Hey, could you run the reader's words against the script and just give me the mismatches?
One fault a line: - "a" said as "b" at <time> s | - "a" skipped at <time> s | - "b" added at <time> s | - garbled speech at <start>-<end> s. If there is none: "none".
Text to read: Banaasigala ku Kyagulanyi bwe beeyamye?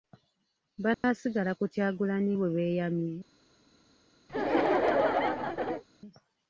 none